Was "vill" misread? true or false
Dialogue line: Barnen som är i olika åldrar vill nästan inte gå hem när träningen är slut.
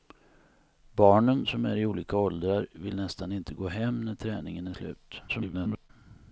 false